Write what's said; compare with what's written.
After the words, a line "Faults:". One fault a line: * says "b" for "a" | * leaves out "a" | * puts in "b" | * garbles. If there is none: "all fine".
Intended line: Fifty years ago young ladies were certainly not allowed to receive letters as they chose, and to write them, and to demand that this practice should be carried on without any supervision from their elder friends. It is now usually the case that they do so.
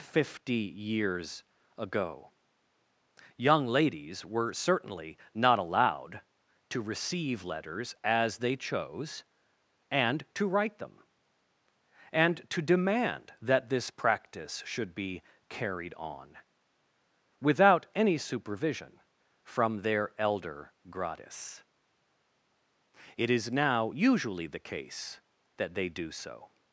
Fifty years ago young ladies were certainly not allowed to receive letters as they chose, and to write them, and to demand that this practice should be carried on without any supervision from their elder gratis. It is now usually the case that they do so.
Faults:
* says "gratis" for "friends"